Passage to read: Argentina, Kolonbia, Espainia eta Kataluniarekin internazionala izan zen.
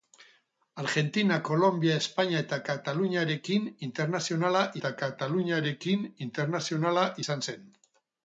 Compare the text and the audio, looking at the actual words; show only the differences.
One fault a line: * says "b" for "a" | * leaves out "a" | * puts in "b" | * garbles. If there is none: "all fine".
* puts in "eta Kataluniarekin internazionala"